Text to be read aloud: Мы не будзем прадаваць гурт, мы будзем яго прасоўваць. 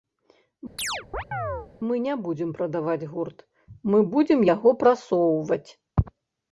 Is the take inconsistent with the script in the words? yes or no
no